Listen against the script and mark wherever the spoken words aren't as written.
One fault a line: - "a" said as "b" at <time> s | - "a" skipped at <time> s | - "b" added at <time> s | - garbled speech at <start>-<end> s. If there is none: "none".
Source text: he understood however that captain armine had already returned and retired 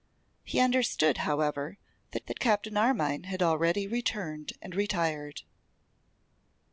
- "that" added at 2.2 s